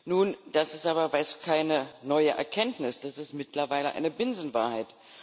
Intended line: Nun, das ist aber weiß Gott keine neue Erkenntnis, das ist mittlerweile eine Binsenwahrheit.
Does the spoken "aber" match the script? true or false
true